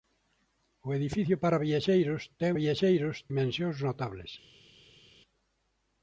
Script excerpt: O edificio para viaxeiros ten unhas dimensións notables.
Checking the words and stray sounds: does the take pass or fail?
fail